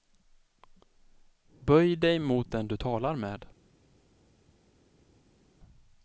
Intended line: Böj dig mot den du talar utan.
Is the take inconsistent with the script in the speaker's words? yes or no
yes